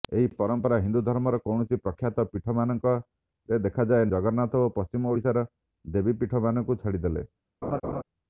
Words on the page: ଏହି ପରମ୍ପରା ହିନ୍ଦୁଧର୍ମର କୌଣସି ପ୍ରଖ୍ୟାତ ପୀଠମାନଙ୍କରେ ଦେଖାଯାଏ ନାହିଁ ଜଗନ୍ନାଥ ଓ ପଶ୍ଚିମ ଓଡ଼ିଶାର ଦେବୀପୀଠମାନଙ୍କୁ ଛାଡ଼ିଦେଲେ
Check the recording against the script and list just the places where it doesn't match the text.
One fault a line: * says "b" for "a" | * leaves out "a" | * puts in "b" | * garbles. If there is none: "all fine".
* leaves out "ନାହିଁ"